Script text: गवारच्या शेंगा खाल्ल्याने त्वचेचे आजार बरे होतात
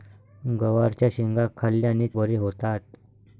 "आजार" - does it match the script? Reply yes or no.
no